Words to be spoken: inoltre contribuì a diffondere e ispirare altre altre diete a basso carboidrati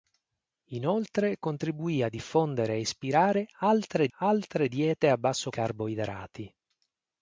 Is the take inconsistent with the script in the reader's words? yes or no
no